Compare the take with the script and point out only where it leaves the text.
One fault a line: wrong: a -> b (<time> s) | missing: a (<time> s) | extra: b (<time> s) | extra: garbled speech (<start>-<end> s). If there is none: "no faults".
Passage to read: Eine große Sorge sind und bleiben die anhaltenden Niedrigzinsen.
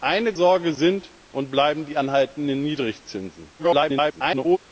missing: große (0.3 s)
extra: garbled speech (3.6-4.6 s)